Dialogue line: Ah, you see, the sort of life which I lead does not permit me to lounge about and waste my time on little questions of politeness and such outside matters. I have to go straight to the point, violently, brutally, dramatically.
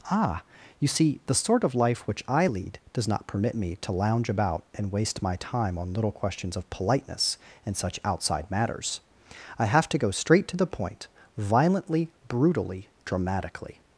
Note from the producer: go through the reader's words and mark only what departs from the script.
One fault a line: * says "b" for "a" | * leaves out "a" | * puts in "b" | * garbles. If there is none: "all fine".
all fine